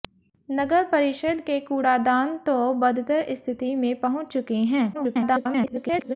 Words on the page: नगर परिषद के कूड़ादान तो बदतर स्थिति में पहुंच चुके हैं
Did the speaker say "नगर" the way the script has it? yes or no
yes